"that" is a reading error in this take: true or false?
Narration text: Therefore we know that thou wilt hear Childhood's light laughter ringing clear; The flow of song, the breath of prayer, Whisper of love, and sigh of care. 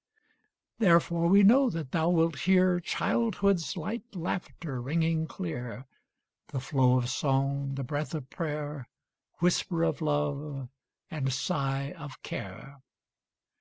false